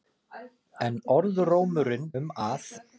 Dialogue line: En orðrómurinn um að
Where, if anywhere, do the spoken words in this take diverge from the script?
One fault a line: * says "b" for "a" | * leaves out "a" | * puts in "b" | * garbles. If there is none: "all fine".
all fine